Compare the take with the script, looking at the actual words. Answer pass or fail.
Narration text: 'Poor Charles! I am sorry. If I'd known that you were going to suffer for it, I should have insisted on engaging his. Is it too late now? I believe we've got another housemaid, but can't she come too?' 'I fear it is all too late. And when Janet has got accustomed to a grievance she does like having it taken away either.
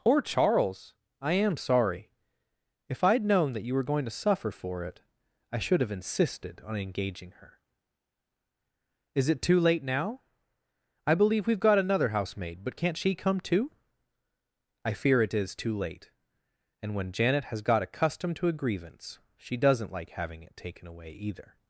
fail